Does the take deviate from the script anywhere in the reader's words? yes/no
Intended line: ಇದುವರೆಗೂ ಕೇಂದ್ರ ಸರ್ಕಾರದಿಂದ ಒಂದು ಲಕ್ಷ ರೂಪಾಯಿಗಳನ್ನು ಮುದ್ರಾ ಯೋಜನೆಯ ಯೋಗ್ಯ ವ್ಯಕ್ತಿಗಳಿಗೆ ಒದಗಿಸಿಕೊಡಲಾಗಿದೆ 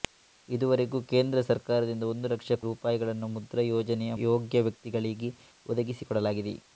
no